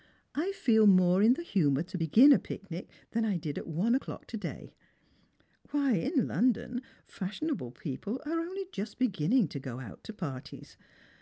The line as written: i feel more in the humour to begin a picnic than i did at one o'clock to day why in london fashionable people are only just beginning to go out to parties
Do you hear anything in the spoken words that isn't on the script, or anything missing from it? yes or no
no